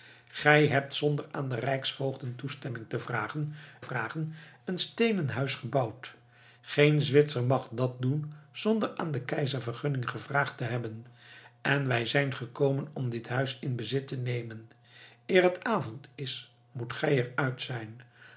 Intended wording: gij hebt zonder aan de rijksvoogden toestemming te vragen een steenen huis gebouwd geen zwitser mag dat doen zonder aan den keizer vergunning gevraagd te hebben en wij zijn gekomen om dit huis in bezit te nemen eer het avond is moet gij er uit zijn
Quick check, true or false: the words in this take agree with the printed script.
false